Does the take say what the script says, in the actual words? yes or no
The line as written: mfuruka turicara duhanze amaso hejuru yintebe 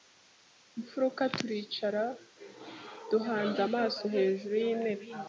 yes